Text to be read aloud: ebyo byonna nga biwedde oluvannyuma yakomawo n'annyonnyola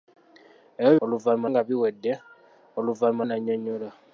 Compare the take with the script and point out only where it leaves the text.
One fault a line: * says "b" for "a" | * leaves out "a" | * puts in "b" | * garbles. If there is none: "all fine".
* says "oluvannyuma" for "byonna"
* leaves out "yakomawo"